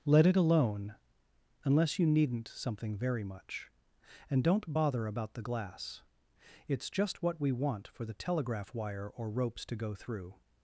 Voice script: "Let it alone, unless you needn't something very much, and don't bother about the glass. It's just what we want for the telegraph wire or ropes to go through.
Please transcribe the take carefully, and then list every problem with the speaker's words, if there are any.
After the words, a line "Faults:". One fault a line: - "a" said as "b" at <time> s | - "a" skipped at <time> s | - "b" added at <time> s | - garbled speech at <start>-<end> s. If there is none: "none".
"Let it alone, unless you needn't something very much, and don't bother about the glass. It's just what we want for the telegraph wire or ropes to go through.
Faults:
none